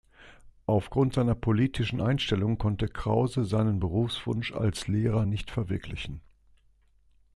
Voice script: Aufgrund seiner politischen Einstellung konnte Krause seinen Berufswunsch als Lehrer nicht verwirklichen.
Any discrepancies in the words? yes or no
no